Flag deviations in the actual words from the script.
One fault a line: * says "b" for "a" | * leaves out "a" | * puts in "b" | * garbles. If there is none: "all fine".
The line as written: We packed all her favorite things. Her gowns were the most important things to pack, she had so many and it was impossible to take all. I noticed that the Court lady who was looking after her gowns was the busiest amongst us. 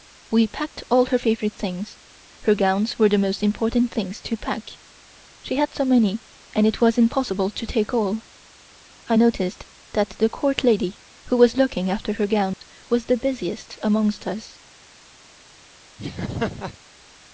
all fine